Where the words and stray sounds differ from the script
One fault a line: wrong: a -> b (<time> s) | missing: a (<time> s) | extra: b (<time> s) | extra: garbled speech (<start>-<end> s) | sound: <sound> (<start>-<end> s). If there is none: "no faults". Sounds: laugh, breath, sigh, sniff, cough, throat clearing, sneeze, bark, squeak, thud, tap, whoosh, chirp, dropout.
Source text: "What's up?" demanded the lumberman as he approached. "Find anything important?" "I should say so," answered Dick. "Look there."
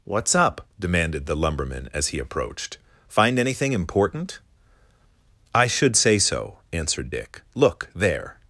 no faults